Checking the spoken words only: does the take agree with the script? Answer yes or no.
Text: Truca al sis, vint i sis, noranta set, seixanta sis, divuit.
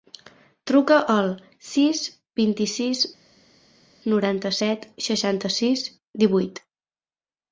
yes